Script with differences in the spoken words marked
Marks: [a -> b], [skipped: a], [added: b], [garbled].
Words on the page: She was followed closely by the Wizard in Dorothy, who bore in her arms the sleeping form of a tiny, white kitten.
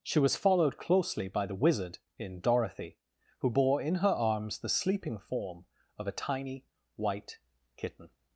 She was followed closely by the Wizard in Dorothy, who bore in her arms the sleeping form of a tiny, white kitten.